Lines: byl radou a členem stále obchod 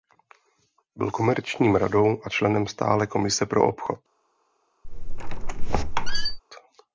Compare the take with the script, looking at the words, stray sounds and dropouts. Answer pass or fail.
fail